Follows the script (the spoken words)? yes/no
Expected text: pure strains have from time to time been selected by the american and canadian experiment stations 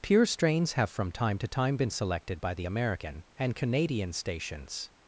no